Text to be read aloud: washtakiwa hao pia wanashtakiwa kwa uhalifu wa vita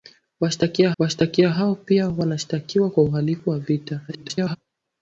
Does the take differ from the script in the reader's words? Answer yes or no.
yes